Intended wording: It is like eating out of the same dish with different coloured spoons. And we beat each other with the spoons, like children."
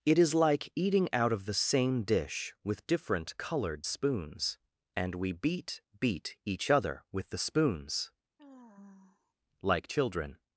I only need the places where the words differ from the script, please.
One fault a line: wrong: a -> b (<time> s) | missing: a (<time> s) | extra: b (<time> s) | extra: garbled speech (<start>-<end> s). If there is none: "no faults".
extra: beat (6.0 s)